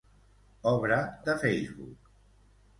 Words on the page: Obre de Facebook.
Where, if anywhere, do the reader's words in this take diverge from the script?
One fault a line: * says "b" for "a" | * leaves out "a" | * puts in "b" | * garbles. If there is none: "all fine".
all fine